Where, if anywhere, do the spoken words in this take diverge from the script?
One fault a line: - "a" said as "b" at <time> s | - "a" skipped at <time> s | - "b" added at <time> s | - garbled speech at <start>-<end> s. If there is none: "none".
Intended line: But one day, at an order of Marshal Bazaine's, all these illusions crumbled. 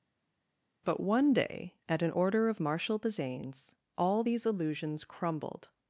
none